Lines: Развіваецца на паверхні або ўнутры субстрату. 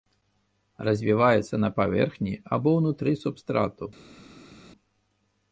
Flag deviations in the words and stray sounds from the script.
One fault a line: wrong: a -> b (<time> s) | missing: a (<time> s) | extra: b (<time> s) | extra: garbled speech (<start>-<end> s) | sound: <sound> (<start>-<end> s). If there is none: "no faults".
no faults